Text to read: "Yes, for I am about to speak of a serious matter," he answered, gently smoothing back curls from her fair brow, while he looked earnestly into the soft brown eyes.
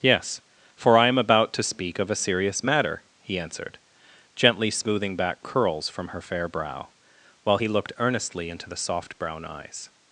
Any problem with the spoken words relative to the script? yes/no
no